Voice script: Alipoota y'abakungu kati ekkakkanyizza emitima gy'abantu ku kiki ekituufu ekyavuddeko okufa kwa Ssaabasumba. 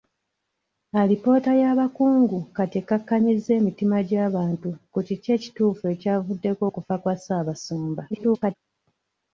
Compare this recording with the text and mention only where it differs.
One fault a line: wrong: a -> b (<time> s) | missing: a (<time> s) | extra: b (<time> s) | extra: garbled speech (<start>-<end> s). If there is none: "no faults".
extra: garbled speech (8.1-8.6 s)